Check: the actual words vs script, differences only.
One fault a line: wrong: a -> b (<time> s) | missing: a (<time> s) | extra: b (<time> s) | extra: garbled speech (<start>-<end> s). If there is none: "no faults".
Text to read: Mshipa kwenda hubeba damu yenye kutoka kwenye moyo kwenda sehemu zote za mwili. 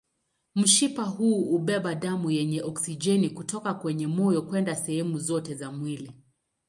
wrong: kwenda -> huu (1.0 s)
extra: oksijeni (2.6 s)